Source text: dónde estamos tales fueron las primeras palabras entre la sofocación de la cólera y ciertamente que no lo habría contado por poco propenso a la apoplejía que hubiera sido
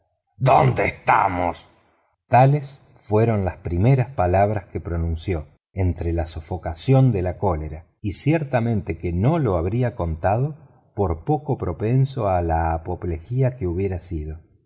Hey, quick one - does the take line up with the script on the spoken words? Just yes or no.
no